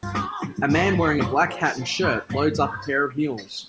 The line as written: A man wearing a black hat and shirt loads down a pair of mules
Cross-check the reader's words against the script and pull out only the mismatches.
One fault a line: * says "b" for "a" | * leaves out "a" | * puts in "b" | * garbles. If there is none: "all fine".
* says "up" for "down"